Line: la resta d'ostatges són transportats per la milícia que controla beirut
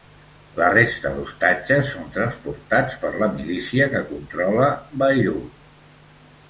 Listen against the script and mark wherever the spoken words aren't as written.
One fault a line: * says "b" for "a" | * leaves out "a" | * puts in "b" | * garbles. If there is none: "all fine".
all fine